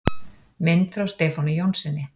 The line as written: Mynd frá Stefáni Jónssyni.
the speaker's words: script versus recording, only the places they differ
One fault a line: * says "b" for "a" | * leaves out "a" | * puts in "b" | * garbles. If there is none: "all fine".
all fine